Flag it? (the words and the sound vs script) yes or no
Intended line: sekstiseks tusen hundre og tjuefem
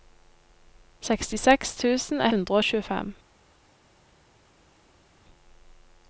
no